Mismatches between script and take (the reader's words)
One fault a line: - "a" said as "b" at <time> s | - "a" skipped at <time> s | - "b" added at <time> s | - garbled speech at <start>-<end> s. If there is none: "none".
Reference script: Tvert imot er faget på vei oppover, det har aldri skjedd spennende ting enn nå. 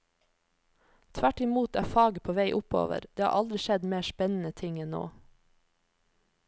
- "mer" added at 3.9 s